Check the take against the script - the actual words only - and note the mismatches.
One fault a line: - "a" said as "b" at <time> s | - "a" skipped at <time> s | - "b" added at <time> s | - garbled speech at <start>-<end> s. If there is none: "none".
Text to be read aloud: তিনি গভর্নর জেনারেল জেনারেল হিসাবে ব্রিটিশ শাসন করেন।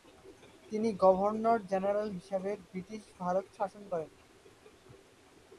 - "জেনারেল" skipped at 2.1 s
- "ভারত" added at 3.2 s